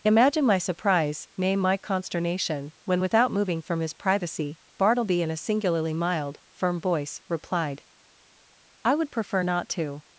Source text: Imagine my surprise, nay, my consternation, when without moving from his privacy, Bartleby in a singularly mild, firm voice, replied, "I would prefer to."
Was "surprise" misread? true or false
false